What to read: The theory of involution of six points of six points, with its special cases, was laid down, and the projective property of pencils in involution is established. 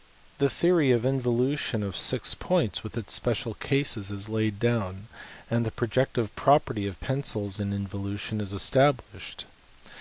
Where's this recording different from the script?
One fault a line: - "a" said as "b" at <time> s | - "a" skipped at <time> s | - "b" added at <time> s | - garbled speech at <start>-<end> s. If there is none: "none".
- "of six points" skipped at 2.8 s
- "was" said as "is" at 4.1 s